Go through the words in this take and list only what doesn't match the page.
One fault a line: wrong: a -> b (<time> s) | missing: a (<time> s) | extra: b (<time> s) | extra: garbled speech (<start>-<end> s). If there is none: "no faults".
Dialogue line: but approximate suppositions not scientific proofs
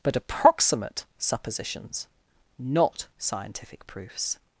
no faults